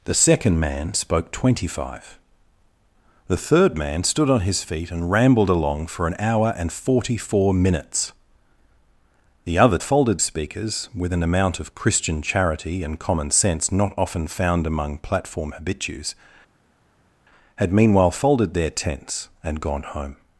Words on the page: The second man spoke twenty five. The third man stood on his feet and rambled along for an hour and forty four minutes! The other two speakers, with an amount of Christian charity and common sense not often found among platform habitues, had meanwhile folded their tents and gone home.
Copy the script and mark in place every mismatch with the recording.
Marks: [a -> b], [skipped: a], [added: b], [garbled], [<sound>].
The second man spoke twenty five. The third man stood on his feet and rambled along for an hour and forty four minutes! The other [two -> folded] speakers, with an amount of Christian charity and common sense not often found among platform habitues, had meanwhile folded their tents and gone home.